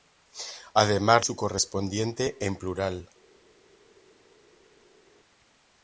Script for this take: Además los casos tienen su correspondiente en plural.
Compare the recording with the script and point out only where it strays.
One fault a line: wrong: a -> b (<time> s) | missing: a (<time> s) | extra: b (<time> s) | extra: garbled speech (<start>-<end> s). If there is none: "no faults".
missing: los casos tienen (1.2 s)